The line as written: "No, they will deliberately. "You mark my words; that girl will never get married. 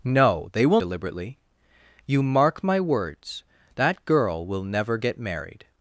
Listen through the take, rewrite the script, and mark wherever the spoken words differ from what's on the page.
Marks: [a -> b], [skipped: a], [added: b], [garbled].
"No, they will deliberately. "You mark my words; that girl will never get married.